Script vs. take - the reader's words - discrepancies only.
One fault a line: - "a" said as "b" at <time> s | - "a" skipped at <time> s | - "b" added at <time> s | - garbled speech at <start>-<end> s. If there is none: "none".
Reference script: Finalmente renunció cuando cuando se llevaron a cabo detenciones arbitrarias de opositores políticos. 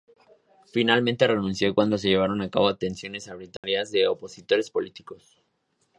- "cuando" skipped at 2.0 s